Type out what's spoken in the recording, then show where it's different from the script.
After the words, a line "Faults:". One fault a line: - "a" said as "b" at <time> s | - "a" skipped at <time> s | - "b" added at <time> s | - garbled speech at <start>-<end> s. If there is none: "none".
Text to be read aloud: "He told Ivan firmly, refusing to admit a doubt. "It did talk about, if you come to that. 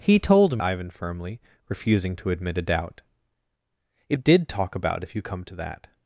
"He told Ivan firmly, refusing to admit a doubt. "It did talk about, if you come to that.
Faults:
none